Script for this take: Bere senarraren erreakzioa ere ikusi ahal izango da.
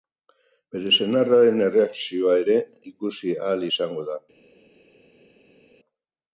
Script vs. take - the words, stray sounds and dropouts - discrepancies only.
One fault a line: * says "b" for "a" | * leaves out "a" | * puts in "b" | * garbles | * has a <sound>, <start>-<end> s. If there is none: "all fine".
all fine